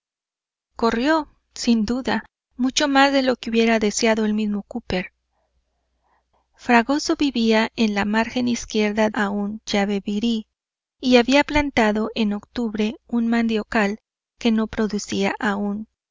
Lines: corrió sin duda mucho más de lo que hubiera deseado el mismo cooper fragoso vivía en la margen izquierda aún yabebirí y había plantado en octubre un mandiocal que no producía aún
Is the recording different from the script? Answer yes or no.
no